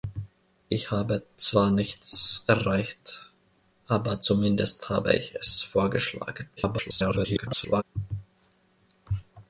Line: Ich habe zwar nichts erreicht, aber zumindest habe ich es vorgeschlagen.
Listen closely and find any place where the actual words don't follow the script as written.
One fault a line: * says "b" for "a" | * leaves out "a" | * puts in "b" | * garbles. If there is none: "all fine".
* garbles